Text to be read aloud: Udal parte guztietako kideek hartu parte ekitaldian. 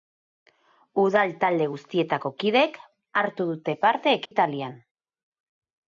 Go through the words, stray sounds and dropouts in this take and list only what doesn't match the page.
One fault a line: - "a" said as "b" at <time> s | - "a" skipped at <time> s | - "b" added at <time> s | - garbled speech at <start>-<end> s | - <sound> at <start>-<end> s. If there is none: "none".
- "parte" said as "talde" at 1.4 s
- "dute" added at 3.5 s
- dropout at 4.3-4.3 s